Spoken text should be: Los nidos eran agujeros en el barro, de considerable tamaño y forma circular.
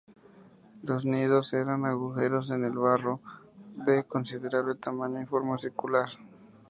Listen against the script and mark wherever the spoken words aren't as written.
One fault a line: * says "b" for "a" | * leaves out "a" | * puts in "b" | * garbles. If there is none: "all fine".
all fine